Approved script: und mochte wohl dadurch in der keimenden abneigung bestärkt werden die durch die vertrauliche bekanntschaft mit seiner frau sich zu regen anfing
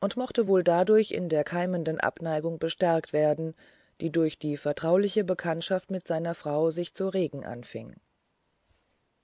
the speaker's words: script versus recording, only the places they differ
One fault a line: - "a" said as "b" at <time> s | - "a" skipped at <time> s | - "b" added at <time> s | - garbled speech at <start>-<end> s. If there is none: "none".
none